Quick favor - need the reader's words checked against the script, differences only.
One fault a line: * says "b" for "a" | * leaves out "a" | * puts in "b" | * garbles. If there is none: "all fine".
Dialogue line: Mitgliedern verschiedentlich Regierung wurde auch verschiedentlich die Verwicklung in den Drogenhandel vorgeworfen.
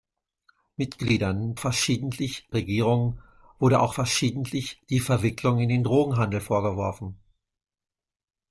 all fine